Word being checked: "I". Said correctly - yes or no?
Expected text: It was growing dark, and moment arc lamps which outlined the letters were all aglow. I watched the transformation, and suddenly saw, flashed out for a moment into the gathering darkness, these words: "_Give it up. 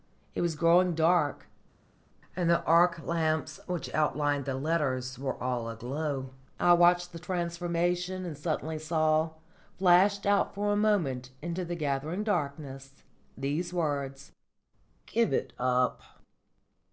yes